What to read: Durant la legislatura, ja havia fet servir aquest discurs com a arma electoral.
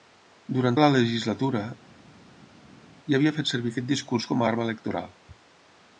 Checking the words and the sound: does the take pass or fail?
pass